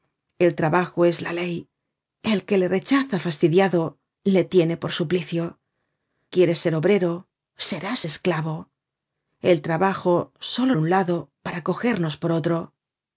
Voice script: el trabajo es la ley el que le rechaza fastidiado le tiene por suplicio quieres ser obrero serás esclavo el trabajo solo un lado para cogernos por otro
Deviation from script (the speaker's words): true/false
false